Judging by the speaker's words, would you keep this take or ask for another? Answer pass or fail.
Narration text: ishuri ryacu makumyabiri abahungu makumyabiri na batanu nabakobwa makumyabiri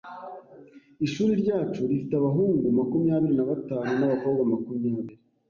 fail